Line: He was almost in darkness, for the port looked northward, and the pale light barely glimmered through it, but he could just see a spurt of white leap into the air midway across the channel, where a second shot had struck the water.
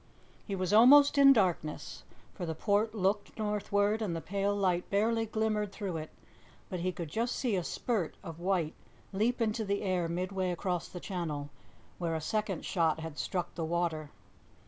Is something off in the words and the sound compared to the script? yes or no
no